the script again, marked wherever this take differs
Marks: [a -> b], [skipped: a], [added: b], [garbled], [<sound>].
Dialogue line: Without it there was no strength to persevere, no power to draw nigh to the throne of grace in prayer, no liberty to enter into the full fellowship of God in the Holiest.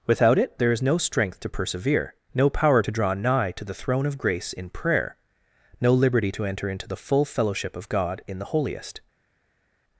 Without it there [was -> is] no strength to persevere, no power to draw nigh to the throne of grace in prayer, no liberty to enter into the full fellowship of God in the Holiest.